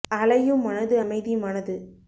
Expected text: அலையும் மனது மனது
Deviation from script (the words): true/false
true